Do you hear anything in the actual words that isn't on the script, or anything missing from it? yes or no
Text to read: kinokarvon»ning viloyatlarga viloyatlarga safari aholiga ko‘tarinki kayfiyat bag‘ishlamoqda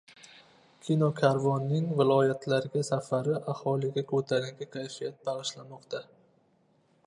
yes